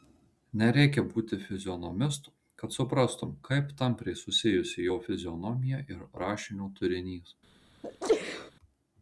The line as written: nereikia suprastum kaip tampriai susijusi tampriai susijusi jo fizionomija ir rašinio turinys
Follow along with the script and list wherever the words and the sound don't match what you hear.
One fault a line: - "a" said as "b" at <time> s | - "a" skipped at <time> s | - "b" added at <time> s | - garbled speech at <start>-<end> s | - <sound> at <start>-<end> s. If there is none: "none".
- "būti fizionomistu kad" added at 1.1 s
- "tampriai susijusi" skipped at 4.9 s
- sneeze at 7.8-8.5 s